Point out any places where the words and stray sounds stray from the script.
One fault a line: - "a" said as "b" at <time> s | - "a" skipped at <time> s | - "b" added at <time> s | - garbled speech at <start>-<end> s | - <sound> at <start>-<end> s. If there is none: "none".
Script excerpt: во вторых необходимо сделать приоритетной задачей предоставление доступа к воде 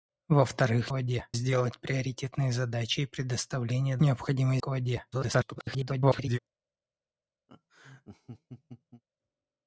- "необходимо" said as "воде" at 0.9 s
- "доступа" said as "необходимо" at 4.0 s
- garbled speech at 5.1-6.4 s
- laugh at 7.5-9.0 s